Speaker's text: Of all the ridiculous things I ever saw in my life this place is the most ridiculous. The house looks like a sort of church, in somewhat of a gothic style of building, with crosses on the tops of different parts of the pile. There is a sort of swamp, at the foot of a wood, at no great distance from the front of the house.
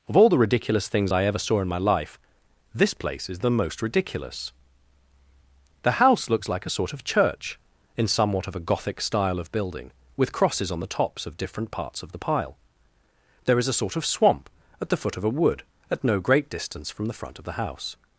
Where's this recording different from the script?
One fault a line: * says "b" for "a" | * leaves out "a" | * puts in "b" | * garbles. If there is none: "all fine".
all fine